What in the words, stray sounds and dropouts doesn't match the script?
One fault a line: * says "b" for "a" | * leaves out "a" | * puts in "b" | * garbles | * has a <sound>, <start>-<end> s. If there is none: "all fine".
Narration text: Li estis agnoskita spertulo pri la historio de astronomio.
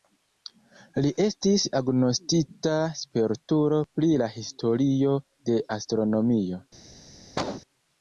* has a cough, 7.4-7.6 s